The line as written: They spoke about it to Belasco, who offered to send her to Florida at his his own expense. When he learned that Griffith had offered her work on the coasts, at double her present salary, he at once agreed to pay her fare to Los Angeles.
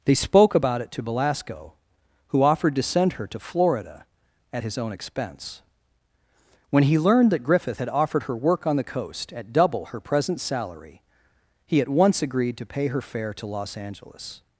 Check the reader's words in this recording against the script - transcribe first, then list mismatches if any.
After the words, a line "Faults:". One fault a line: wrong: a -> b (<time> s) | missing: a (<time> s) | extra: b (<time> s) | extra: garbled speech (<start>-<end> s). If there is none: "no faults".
They spoke about it to Belasco, who offered to send her to Florida at his own expense. When he learned that Griffith had offered her work on the coast, at double her present salary, he at once agreed to pay her fare to Los Angeles.
Faults:
missing: his (4.8 s)
wrong: coasts -> coast (8.8 s)